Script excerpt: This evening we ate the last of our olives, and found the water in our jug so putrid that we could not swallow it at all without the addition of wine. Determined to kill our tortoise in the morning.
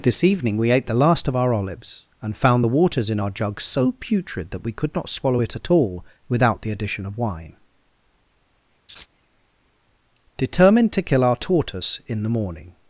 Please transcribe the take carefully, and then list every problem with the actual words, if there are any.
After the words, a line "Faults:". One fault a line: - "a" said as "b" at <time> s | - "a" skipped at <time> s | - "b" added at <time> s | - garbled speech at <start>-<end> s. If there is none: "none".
This evening we ate the last of our olives, and found the waters in our jug so putrid that we could not swallow it at all without the addition of wine. Determined to kill our tortoise in the morning.
Faults:
- "water" said as "waters" at 2.7 s